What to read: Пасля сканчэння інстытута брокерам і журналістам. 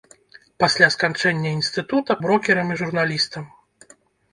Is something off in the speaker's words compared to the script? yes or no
no